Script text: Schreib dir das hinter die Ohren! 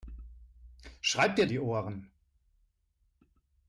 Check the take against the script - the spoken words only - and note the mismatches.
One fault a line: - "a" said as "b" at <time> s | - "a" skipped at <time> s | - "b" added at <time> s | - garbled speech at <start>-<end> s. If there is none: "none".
- "das hinter" skipped at 1.4 s